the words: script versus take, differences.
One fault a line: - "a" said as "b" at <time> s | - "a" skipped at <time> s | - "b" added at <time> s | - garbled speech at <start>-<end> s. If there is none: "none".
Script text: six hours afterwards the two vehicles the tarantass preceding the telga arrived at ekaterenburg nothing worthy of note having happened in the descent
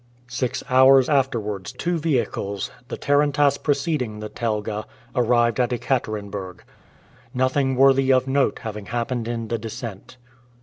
- "the" skipped at 1.7 s